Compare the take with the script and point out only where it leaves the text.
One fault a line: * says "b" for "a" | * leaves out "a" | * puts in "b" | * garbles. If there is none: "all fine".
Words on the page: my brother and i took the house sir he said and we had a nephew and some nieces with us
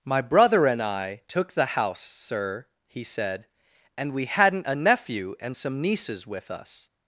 * says "hadn't" for "had"